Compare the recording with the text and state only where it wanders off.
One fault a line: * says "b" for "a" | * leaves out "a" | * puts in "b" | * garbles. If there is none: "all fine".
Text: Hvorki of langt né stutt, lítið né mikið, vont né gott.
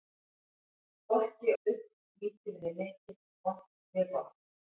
* leaves out "of langt né"